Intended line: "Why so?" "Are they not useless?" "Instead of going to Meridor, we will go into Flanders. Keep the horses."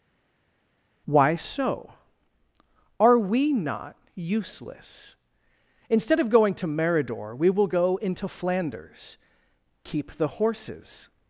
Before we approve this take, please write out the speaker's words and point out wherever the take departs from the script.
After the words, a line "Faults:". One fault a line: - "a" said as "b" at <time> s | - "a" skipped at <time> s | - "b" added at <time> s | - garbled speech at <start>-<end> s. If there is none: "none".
"Why so?" "Are we not useless?" "Instead of going to Meridor, we will go into Flanders. Keep the horses."
Faults:
- "they" said as "we" at 3.2 s